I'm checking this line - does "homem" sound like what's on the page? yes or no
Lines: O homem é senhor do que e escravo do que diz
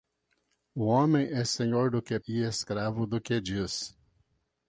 yes